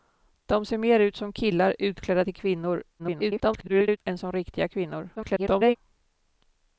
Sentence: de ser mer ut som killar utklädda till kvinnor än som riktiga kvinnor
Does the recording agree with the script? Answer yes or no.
no